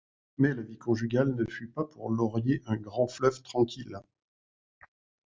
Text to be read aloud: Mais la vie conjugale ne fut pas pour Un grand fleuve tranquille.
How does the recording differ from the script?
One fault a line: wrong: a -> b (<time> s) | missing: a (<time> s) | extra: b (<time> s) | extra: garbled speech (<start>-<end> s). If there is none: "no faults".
extra: Laurier (2.1 s)